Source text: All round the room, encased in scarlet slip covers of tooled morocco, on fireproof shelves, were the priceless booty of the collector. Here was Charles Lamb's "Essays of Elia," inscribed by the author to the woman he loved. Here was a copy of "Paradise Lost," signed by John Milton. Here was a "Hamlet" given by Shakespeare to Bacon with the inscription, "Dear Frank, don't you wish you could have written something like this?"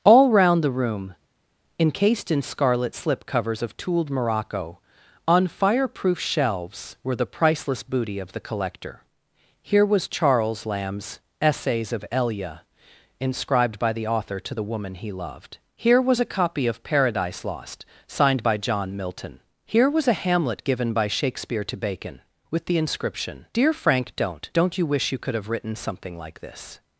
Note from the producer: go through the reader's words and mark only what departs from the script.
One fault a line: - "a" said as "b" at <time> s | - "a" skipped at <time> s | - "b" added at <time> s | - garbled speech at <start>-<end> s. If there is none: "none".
- "don't" added at 24.5 s